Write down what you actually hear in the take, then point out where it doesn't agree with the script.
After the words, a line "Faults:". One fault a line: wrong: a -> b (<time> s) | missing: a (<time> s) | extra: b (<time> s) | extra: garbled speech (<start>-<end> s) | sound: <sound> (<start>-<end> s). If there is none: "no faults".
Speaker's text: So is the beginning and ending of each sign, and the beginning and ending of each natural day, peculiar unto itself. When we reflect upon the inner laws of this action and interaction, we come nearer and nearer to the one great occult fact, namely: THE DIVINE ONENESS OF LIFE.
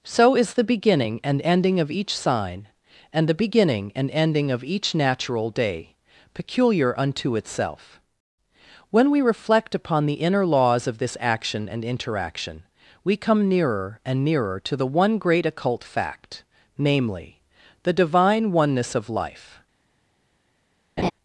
So is the beginning and ending of each sign, and the beginning and ending of each natural day, peculiar unto itself. When we reflect upon the inner laws of this action and interaction, we come nearer and nearer to the one great occult fact, namely: THE DIVINE ONENESS OF LIFE.
Faults:
sound: laugh (21.0-21.1 s)